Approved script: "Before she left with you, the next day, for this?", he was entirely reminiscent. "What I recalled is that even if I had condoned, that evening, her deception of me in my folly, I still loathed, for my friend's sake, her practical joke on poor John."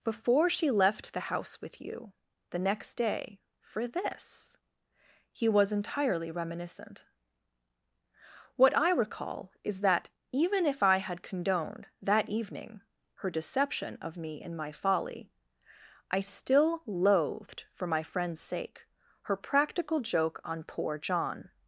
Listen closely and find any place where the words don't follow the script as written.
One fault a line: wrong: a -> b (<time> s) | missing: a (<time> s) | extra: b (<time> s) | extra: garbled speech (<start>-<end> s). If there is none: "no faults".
extra: the house (1.1 s)
wrong: recalled -> recall (8.9 s)